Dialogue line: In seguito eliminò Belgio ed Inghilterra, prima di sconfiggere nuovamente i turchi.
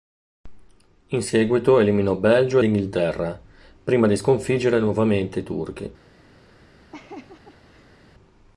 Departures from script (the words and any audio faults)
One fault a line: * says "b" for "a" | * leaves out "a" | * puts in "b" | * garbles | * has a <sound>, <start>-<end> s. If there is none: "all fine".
* leaves out "ed"
* has a laugh, 6.9-8.0 s